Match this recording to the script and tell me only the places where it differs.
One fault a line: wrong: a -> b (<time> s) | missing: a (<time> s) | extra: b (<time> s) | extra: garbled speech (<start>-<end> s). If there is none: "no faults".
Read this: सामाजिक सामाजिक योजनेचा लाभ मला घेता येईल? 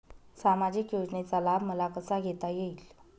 missing: सामाजिक (0.9 s)
extra: कसा (1.9 s)